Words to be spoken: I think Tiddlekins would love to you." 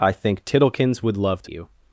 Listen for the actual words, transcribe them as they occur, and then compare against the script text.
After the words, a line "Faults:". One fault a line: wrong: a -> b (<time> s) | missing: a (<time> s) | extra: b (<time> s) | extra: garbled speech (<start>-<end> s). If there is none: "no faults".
I think Tiddlekins would love to you."
Faults:
no faults